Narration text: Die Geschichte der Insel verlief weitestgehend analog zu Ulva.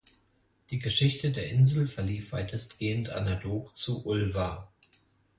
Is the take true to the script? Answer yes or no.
yes